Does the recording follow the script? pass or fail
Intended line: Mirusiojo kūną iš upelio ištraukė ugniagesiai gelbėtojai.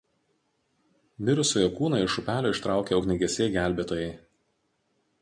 pass